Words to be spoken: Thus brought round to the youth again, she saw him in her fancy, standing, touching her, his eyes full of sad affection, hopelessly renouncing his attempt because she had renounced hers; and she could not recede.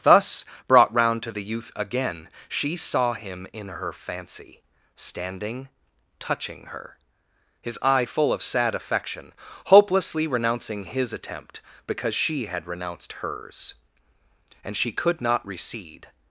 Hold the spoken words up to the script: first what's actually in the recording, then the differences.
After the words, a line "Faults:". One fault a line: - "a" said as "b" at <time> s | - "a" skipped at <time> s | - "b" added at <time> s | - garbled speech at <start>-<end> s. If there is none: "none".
Thus brought round to the youth again, she saw him in her fancy, standing, touching her, his eye full of sad affection, hopelessly renouncing his attempt because she had renounced hers; and she could not recede.
Faults:
- "eyes" said as "eye" at 7.8 s